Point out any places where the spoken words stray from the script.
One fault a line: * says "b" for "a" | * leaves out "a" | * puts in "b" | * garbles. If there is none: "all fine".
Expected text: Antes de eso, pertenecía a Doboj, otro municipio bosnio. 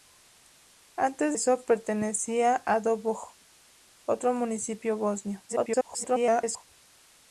* leaves out "de"
* garbles